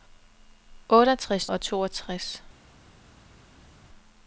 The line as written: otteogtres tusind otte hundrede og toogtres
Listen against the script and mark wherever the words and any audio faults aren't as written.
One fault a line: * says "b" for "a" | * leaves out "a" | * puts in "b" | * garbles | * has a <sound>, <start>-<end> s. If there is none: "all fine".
* leaves out "tusind otte hundrede"